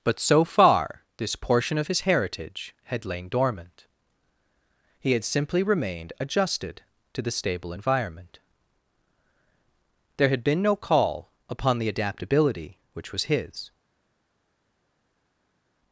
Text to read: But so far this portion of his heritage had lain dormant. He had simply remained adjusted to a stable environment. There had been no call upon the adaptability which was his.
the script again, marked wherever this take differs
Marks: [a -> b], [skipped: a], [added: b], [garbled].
But so far this portion of his heritage had lain dormant. He had simply remained adjusted to [a -> the] stable environment. There had been no call upon the adaptability which was his.